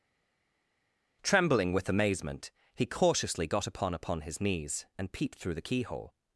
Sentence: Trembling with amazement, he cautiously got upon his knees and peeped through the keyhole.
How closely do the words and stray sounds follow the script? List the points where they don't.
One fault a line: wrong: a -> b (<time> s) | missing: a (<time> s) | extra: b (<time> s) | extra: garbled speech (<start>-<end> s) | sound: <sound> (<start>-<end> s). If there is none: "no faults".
extra: upon (3.9 s)